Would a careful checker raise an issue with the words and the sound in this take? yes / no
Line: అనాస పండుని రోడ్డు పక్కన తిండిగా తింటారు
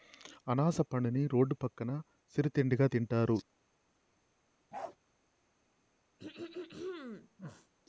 yes